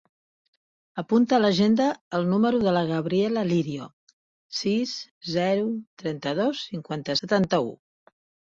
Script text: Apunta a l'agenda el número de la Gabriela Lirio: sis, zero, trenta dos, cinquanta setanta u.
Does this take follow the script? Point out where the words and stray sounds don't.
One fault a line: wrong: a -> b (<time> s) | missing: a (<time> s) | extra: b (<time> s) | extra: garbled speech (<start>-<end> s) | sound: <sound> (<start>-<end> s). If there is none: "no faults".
no faults